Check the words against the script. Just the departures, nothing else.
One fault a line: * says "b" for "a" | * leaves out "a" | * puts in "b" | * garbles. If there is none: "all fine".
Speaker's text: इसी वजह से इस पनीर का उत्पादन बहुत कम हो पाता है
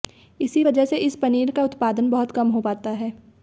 all fine